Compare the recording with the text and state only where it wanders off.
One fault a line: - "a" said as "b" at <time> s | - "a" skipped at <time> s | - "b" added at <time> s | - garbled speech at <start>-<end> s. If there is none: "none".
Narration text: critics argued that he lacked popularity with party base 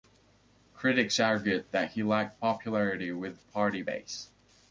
none